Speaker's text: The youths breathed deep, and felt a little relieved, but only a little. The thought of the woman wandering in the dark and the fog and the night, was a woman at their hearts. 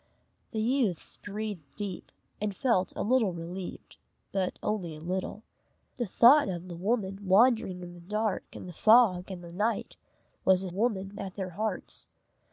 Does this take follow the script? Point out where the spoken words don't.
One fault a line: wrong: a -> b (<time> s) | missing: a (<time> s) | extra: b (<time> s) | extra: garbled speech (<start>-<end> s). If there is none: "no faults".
no faults